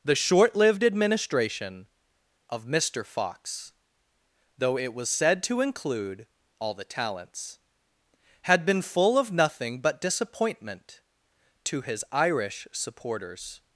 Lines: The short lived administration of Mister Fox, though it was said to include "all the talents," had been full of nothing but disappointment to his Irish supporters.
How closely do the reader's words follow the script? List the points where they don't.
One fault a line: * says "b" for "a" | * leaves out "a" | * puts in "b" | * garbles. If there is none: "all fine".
all fine